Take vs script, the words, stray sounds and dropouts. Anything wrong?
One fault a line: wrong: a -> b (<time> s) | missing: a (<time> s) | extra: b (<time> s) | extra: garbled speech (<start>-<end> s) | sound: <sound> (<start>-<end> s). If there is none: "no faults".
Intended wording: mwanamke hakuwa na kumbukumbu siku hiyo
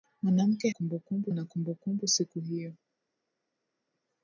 wrong: hakuwa -> kumbukumbu (0.7 s)